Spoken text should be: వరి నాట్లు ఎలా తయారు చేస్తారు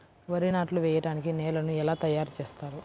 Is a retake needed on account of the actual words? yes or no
yes